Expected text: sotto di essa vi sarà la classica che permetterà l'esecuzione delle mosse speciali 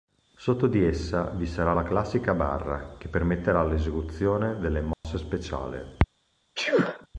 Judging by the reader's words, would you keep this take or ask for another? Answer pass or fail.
fail